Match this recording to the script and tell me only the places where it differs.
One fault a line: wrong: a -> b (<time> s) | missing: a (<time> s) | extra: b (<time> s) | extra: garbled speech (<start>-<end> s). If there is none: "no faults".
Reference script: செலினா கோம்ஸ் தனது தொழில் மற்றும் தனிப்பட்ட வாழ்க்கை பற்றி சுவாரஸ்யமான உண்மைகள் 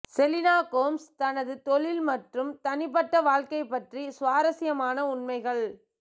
no faults